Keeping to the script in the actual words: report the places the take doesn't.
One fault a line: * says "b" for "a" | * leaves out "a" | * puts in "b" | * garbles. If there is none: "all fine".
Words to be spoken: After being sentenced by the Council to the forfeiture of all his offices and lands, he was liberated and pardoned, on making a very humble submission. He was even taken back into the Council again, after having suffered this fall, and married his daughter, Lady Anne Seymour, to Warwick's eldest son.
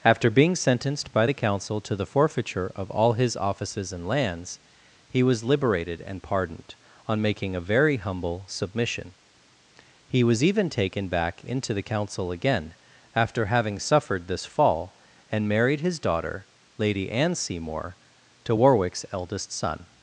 all fine